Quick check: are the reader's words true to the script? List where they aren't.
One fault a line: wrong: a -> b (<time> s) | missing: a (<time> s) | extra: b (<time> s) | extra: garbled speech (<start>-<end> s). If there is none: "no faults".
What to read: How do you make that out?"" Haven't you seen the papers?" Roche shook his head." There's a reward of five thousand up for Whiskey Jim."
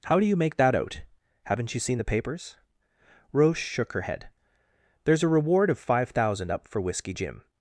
wrong: his -> her (3.9 s)